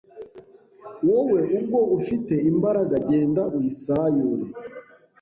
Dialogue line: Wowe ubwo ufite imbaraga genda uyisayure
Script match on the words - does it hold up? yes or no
yes